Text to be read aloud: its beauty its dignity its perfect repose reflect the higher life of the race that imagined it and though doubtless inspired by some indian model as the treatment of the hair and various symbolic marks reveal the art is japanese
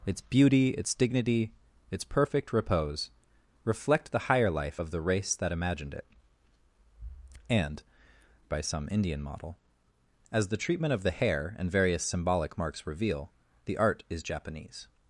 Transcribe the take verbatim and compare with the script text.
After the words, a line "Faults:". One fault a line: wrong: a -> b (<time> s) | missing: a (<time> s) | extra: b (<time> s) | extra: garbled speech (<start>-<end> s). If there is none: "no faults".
its beauty its dignity its perfect repose reflect the higher life of the race that imagined it and by some indian model as the treatment of the hair and various symbolic marks reveal the art is japanese
Faults:
missing: though doubtless inspired (7.8 s)